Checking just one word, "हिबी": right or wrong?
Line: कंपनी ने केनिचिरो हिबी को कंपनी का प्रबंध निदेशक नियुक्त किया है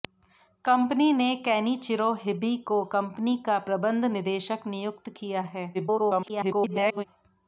right